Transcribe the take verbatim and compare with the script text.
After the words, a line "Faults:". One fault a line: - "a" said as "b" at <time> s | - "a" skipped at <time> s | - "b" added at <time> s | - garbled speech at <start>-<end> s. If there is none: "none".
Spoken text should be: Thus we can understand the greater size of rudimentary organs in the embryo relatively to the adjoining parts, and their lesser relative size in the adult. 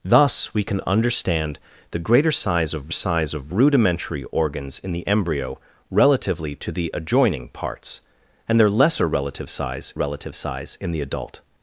Thus we can understand the greater size of size of rudimentary organs in the embryo relatively to the adjoining parts, and their lesser relative size relative size in the adult.
Faults:
- "size of" added at 2.9 s
- "relative size" added at 9.9 s